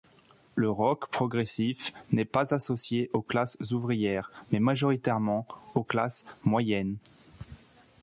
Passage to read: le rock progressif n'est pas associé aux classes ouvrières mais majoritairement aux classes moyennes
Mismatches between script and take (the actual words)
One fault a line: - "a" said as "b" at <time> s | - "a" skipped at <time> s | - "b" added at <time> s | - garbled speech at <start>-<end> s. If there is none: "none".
none